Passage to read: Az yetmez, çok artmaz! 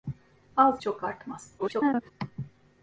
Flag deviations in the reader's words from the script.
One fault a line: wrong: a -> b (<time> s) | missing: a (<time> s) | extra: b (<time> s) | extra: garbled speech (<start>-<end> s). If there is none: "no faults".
missing: yetmez (0.8 s)
extra: garbled speech (1.6-2.1 s)